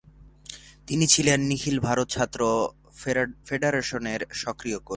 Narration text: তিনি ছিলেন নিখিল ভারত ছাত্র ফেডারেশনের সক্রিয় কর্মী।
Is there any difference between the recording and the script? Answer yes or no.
no